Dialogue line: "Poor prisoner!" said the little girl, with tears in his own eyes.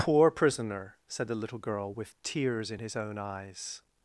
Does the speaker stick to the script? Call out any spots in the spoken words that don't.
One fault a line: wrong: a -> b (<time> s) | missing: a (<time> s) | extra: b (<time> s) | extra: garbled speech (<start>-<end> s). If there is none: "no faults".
no faults